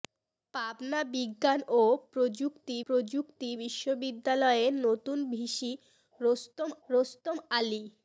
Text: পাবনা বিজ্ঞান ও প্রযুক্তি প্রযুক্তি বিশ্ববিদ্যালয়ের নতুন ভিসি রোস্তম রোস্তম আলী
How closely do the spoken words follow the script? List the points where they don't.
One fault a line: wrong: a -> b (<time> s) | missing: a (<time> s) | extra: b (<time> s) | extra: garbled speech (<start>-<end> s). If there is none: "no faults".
no faults